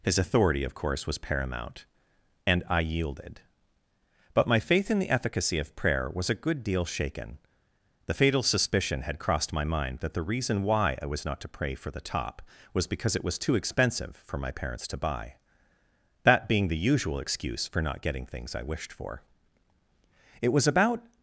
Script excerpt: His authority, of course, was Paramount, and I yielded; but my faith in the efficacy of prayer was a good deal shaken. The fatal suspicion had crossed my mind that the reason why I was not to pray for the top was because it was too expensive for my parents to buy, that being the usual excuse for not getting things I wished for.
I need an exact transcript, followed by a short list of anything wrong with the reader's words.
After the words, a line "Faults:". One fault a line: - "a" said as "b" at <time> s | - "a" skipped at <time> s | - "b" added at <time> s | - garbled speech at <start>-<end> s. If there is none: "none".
His authority, of course, was Paramount, and I yielded; but my faith in the efficacy of prayer was a good deal shaken. The fatal suspicion had crossed my mind that the reason why I was not to pray for the top was because it was too expensive for my parents to buy, that being the usual excuse for not getting things I wished for. It was about
Faults:
- "It was about" added at 20.4 s